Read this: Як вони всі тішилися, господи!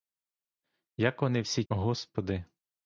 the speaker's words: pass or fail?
fail